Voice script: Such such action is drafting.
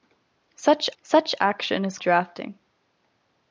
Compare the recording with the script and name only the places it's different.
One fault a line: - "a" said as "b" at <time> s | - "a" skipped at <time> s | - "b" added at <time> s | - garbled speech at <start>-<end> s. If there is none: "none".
none